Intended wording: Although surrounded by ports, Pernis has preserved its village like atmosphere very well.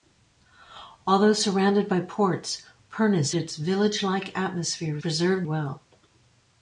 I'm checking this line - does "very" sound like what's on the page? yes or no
no